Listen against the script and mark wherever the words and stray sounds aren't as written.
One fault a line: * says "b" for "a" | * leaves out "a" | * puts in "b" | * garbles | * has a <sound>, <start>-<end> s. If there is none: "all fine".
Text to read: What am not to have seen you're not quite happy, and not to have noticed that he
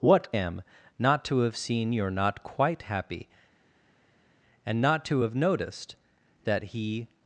all fine